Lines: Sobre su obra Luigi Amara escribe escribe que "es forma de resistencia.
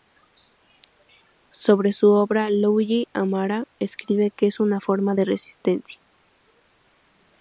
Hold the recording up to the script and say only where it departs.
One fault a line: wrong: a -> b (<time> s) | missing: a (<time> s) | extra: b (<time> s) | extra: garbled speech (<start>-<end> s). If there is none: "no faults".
missing: escribe (4.3 s)
extra: una (4.6 s)